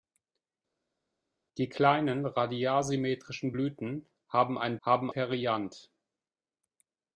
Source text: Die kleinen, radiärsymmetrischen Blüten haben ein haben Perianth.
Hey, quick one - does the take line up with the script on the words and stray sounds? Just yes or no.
yes